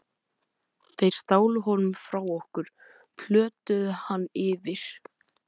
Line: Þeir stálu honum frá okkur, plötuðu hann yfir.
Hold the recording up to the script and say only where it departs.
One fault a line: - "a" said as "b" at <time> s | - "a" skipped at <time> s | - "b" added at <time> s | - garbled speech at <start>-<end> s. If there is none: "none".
none